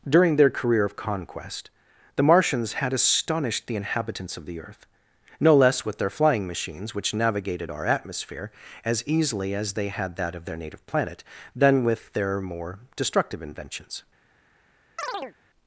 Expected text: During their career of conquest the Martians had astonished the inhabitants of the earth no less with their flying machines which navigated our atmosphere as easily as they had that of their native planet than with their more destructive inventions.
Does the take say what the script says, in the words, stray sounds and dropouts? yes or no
no